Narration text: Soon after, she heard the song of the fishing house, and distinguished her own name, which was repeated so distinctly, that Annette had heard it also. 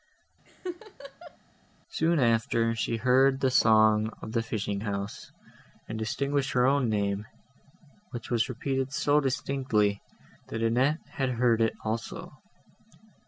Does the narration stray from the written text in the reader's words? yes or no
no